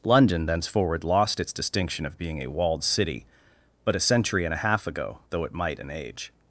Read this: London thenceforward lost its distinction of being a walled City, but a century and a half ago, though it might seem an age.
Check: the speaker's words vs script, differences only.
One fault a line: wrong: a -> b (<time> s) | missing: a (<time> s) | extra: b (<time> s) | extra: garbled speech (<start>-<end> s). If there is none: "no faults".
missing: seem (5.8 s)